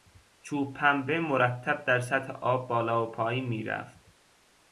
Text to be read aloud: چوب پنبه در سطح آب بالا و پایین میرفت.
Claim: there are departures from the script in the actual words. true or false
true